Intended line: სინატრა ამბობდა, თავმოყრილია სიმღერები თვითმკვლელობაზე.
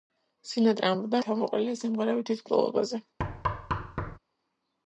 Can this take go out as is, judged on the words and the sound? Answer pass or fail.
fail